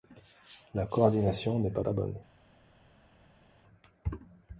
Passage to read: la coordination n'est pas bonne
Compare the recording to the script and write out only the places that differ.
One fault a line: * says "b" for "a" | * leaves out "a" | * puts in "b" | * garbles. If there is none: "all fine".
* puts in "pas"